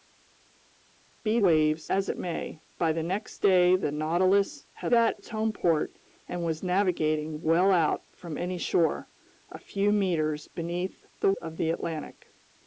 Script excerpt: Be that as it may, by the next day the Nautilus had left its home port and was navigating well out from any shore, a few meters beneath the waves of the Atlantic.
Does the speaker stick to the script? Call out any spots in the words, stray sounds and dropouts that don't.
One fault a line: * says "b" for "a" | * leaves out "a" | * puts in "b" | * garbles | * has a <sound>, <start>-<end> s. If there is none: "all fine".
* says "waves" for "that"
* says "that" for "left"
* leaves out "waves"